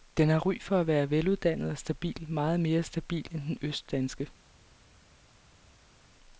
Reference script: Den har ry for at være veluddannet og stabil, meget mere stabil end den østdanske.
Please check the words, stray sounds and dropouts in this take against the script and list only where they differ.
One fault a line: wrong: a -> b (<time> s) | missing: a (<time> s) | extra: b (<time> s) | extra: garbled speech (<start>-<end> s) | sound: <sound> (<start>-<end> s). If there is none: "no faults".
no faults